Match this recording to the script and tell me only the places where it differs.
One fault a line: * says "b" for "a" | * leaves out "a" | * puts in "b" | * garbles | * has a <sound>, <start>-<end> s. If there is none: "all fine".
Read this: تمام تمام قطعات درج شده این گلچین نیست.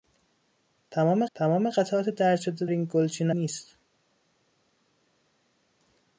all fine